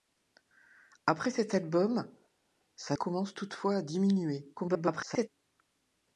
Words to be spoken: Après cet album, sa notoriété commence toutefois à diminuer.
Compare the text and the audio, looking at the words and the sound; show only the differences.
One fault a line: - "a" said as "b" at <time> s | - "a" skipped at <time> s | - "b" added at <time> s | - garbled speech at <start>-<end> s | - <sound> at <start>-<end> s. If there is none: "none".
- "notoriété" skipped at 3.0 s
- garbled speech at 4.6-5.3 s